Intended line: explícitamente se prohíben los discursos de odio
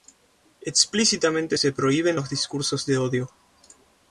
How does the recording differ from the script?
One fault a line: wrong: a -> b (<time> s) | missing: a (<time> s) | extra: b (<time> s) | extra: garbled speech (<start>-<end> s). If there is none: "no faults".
no faults